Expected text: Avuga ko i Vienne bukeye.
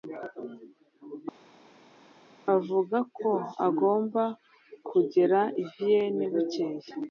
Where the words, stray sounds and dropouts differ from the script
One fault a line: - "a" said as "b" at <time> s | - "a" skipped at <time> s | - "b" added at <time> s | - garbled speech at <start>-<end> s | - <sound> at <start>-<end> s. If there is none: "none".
- "agomba kugera" added at 3.7 s